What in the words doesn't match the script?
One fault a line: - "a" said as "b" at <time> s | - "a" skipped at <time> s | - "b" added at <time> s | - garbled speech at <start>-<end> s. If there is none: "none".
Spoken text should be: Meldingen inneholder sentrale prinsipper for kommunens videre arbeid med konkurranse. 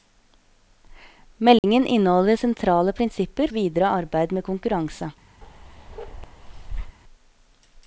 - "for kommunens" skipped at 3.5 s